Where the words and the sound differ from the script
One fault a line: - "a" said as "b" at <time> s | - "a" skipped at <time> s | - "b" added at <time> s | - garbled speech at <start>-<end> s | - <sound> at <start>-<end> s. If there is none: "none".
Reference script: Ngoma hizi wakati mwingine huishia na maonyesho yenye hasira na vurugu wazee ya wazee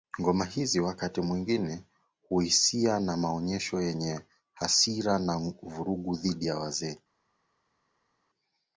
- "wazee" said as "dhidi" at 6.2 s